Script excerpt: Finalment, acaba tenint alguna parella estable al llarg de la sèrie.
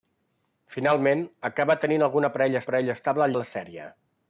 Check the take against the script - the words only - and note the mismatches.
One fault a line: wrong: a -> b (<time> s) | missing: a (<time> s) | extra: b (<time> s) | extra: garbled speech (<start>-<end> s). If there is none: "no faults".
extra: parella (2.7 s)
missing: llarg (3.4 s)